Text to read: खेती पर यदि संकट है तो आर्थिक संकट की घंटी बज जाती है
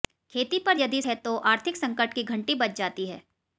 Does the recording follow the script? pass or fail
fail